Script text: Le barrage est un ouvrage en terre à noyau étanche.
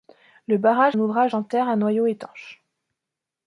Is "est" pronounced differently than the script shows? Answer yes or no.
yes